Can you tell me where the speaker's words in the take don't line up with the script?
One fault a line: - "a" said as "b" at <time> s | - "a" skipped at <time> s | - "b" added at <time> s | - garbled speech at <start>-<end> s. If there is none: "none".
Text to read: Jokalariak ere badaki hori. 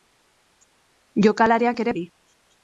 - "badaki" skipped at 1.9 s